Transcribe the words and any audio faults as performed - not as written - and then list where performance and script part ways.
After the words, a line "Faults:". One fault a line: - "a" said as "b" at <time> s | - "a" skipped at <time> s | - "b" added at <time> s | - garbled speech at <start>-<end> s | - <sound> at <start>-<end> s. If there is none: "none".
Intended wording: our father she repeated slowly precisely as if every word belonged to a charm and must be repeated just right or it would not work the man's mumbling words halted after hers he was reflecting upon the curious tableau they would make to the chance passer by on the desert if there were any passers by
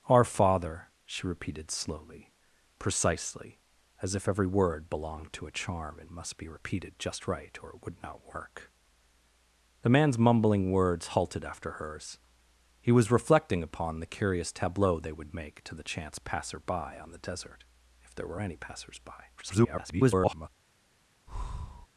our father she repeated slowly precisely as if every word belonged to a charm and must be repeated just right or it would not work the man's mumbling words halted after hers he was reflecting upon the curious tableau they would make to the chance passer by on the desert if there were any passers by [garbled]
Faults:
- garbled speech at 19.4-20.5 s
- breath at 21.3-21.9 s